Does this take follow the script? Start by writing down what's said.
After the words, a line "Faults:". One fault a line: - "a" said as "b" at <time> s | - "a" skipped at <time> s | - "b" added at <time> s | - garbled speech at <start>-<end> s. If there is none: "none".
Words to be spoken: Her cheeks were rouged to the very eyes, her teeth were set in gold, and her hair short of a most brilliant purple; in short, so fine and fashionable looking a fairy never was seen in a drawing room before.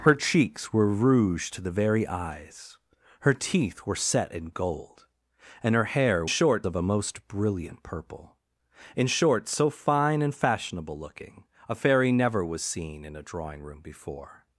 Her cheeks were rouged to the very eyes, her teeth were set in gold, and her hair short of a most brilliant purple; in short, so fine and fashionable looking a fairy never was seen in a drawing room before.
Faults:
none